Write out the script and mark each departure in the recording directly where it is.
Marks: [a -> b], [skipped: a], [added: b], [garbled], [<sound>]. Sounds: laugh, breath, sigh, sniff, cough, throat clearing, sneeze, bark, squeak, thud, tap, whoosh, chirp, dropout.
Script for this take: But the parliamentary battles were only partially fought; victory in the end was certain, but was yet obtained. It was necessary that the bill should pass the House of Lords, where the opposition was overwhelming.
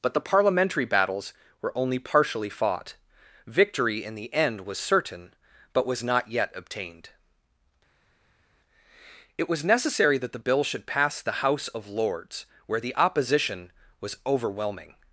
But the parliamentary battles were only partially fought; victory in the end was certain, but was [added: not] yet obtained. It was necessary that the bill should pass the House of Lords, where the opposition was overwhelming.